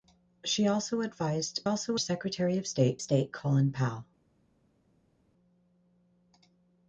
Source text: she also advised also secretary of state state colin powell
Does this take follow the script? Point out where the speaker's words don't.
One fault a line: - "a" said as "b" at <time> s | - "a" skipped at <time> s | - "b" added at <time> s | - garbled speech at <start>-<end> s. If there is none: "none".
none